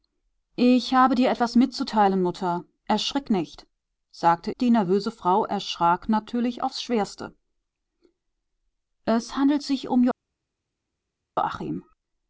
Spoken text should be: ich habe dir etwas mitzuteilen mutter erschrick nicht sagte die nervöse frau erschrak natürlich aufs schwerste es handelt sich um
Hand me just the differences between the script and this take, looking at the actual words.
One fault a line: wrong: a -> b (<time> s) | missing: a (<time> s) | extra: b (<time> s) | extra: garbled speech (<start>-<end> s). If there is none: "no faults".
no faults